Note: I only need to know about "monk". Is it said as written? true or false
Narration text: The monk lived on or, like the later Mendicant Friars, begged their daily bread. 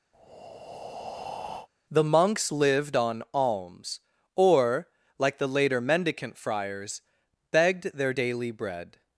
false